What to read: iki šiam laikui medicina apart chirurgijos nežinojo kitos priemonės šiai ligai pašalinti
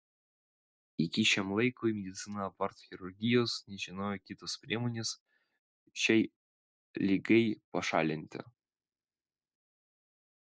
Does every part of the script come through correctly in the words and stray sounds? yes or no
yes